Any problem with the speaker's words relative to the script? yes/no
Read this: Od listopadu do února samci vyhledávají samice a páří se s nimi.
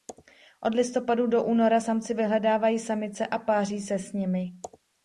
no